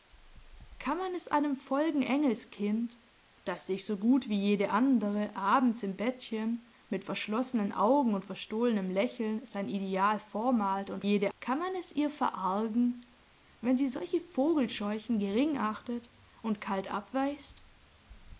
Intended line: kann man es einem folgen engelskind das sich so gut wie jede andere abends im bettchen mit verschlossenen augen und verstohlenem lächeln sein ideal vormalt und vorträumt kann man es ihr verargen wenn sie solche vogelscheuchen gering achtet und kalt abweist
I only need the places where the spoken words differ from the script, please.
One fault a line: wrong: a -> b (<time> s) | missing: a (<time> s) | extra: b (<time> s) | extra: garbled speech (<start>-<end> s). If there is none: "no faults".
wrong: vorträumt -> jede (11.0 s)